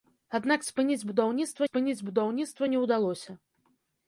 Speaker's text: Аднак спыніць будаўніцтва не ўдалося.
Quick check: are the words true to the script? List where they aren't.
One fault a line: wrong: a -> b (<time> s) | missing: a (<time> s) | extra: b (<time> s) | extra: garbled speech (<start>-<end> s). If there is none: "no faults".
extra: спыніць будаўніцтва (1.7 s)